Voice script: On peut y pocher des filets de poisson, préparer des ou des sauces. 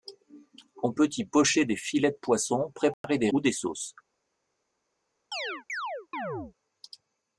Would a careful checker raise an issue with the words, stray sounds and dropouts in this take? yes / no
yes